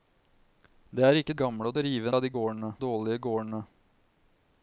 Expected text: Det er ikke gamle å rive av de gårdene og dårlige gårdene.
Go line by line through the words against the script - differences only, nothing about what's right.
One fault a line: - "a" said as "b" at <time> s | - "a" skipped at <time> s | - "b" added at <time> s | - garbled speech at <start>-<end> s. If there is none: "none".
none